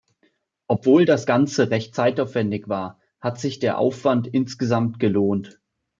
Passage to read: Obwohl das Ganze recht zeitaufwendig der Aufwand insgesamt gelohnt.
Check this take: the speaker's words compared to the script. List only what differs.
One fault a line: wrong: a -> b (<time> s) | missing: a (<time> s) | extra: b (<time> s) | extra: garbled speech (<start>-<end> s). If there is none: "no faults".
extra: war hat sich (2.7 s)